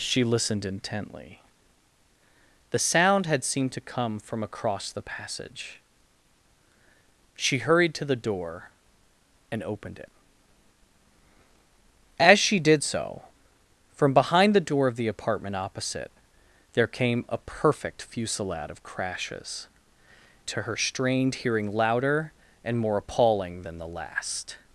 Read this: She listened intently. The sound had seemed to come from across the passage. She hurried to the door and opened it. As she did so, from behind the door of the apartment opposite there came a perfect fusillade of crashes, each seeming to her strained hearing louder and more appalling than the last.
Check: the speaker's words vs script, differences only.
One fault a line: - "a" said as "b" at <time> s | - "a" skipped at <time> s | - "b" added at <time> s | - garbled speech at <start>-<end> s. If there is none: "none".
- "each seeming" skipped at 19.7 s